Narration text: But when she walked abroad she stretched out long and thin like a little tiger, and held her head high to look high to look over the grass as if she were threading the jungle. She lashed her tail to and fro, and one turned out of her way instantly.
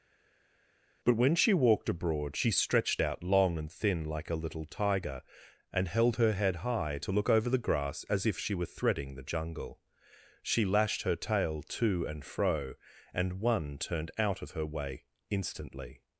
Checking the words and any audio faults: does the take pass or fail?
fail